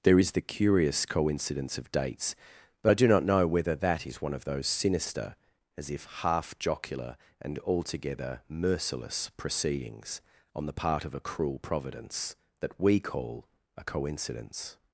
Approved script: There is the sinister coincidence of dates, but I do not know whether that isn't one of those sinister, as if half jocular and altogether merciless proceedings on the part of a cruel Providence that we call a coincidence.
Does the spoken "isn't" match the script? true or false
false